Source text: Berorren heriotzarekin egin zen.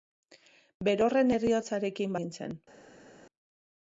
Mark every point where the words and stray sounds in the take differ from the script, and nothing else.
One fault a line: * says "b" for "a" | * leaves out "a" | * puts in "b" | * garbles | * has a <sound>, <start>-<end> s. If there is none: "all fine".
all fine